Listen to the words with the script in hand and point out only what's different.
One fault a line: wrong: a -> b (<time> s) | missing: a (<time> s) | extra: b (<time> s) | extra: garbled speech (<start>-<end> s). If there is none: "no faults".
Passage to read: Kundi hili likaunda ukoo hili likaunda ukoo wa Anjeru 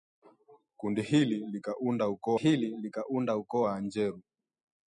no faults